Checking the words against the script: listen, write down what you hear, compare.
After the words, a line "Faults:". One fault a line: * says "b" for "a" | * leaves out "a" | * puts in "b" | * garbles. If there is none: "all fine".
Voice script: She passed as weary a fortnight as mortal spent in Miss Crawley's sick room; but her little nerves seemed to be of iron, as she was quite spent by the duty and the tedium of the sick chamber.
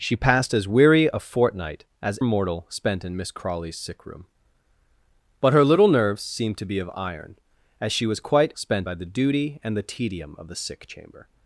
She passed as weary a fortnight as mortal spent in Miss Crawley's sick room; but her little nerves seemed to be of iron, as she was quite spent by the duty and the tedium of the sick chamber.
Faults:
all fine